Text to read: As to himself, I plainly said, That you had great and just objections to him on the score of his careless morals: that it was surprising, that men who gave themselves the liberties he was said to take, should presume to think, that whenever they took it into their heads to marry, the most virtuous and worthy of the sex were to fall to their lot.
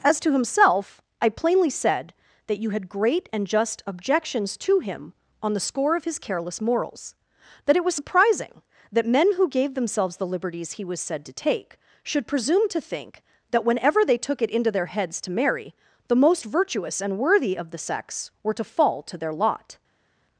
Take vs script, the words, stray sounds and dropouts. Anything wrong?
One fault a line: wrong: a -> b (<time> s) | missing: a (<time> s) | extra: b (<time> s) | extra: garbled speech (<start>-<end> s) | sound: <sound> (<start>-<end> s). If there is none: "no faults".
no faults